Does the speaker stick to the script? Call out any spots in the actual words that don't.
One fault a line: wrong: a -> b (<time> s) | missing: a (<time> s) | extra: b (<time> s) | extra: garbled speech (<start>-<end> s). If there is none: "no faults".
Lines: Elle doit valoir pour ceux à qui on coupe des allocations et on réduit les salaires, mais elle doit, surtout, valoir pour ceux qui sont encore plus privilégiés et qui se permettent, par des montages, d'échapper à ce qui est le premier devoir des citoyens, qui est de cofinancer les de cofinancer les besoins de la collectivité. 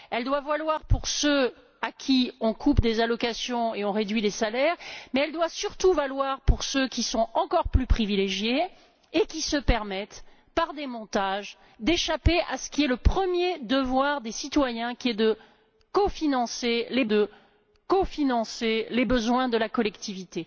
no faults